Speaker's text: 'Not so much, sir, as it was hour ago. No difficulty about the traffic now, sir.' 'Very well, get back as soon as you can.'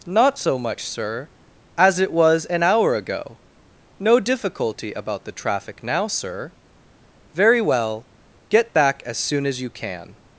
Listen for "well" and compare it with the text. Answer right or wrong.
right